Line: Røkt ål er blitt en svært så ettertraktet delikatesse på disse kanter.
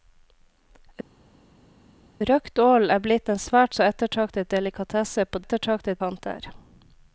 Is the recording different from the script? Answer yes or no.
yes